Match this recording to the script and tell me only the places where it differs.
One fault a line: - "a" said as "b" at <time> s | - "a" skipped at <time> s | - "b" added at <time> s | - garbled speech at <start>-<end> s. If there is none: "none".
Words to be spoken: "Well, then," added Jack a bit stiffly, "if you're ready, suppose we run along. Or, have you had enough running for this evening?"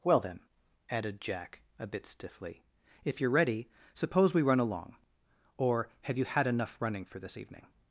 none